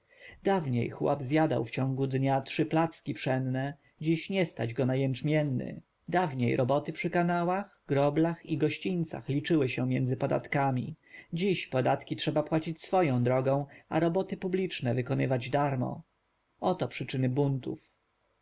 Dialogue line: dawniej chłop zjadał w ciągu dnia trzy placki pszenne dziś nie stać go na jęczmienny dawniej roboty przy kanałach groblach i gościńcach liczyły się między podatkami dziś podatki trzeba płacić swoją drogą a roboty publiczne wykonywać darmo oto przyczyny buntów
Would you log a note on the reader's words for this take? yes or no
no